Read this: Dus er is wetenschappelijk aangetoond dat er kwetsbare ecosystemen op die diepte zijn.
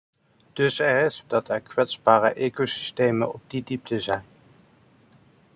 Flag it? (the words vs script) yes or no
yes